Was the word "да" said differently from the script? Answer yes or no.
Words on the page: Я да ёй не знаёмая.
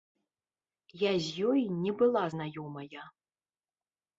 yes